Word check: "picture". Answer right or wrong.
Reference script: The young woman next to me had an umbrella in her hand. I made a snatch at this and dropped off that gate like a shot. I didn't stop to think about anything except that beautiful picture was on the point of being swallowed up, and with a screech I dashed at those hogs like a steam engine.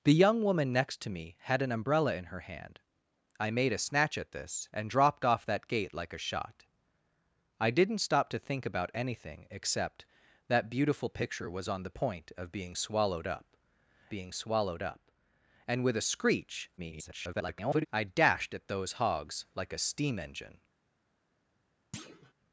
right